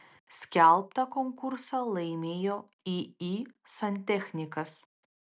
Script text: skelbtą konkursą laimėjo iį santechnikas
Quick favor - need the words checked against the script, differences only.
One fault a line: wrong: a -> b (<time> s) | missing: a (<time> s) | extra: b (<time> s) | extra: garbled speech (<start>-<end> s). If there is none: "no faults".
no faults